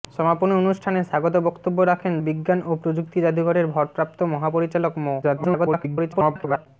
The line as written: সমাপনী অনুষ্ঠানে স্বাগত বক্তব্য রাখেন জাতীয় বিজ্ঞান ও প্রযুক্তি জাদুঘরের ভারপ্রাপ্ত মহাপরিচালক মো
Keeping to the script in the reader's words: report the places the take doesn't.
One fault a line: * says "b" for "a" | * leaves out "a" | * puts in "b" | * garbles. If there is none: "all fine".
* leaves out "জাতীয়"
* garbles